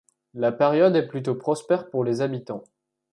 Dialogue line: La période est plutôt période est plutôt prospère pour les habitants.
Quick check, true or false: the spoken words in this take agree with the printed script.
false